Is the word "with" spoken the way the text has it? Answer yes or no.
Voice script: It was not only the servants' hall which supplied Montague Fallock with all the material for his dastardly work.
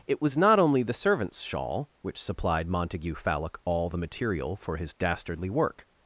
no